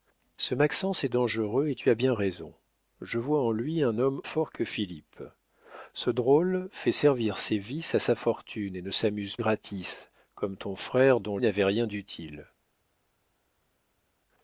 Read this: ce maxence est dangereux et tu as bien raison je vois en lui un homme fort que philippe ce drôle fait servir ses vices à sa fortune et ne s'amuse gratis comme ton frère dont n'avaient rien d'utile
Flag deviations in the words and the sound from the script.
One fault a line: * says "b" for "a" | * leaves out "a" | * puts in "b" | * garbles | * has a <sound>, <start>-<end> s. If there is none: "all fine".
all fine